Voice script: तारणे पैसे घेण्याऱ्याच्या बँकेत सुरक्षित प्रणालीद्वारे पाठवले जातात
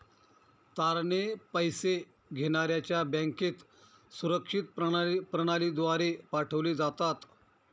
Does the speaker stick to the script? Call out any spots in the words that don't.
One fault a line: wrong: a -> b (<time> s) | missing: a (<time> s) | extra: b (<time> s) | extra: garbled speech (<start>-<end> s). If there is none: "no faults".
no faults